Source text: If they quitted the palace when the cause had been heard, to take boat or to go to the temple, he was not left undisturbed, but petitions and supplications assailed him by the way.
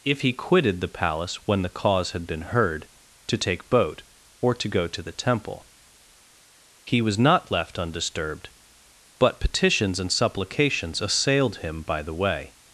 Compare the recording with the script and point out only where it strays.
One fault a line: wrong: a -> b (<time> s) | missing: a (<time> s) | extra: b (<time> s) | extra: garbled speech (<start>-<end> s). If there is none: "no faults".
wrong: they -> he (0.2 s)